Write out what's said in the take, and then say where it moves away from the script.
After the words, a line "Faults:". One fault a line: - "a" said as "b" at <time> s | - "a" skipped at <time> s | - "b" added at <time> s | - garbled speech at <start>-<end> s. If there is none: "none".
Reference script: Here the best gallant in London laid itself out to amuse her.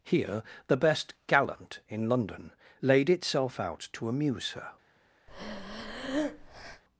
Here the best gallant in London laid itself out to amuse her.
Faults:
none